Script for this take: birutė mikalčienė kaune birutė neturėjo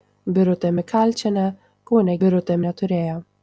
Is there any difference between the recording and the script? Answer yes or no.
no